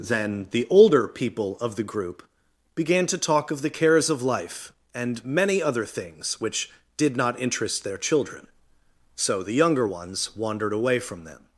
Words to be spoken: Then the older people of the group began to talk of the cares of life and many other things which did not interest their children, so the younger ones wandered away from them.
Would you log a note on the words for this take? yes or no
no